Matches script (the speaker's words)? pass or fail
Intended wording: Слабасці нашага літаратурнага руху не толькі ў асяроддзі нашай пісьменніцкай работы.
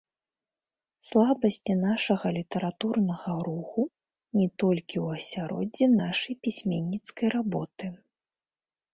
pass